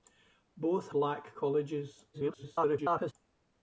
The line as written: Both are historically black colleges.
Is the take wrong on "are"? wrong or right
wrong